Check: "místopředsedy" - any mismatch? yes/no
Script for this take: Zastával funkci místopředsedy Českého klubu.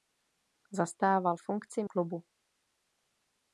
yes